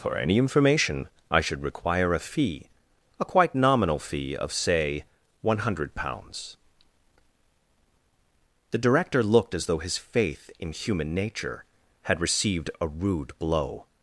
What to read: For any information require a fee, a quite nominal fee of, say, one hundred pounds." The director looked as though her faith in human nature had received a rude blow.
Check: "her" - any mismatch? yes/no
yes